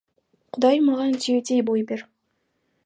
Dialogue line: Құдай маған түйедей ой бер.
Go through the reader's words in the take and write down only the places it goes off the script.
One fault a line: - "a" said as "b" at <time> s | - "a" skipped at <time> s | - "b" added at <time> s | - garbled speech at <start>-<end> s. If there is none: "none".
none